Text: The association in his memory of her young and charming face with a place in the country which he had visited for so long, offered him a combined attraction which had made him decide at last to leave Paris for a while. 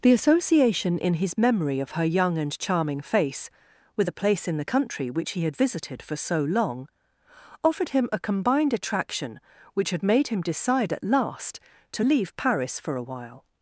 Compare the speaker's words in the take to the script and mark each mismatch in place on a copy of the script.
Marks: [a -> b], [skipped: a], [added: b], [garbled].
The association in his memory of her young and charming face with a place in the country which he had visited for so long, offered him a combined attraction which had made him decide at last to leave Paris for a while.